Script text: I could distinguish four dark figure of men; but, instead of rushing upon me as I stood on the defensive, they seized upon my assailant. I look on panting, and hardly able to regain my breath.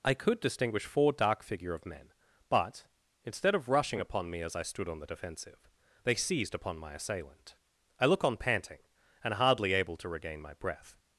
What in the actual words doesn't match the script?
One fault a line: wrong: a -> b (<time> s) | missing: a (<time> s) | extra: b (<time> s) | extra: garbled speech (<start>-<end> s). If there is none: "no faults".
no faults